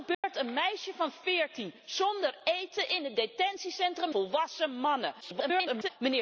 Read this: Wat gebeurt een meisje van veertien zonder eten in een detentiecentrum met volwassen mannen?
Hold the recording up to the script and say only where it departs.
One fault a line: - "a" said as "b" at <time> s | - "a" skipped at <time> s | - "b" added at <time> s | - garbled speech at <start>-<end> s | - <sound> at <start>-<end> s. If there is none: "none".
- dropout at 0.1-0.2 s
- "met" skipped at 4.1 s
- garbled speech at 5.2-5.9 s